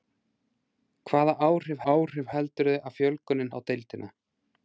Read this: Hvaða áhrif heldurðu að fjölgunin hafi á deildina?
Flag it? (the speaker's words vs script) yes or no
yes